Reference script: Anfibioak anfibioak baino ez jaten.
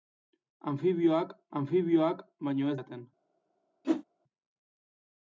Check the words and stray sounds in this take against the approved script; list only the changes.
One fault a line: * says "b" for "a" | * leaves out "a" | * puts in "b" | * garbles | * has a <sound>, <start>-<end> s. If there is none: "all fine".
* has a whoosh, 3.8-4.0 s